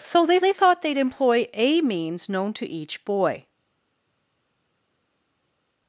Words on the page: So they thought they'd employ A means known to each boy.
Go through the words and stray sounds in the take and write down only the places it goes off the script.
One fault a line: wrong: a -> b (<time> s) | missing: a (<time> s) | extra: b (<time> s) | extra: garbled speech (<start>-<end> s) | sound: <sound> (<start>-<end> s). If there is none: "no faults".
extra: they (0.4 s)